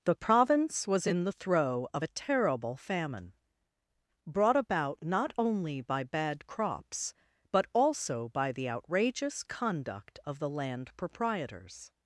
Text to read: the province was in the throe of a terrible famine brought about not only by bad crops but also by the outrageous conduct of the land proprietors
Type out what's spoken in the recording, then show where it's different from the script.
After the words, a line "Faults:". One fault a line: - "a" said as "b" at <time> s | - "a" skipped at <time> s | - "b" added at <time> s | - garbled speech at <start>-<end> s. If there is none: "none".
the province was in the throe of a terrible famine brought about not only by bad crops but also by the outrageous conduct of the land proprietors
Faults:
none